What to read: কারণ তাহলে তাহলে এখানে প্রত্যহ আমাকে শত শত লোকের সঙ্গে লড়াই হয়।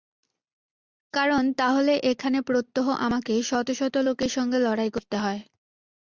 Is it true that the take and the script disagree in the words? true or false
true